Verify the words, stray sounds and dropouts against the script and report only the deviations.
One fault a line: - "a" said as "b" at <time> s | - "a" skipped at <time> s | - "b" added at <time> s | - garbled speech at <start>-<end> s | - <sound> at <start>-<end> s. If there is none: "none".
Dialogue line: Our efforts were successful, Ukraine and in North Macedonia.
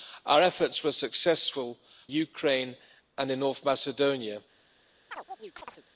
- chirp at 5.1-5.8 s